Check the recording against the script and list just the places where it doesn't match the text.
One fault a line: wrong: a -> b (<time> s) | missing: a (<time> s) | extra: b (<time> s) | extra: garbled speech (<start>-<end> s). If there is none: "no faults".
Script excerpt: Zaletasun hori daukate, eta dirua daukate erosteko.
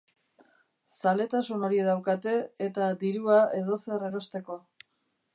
wrong: daukate -> edozer (3.6 s)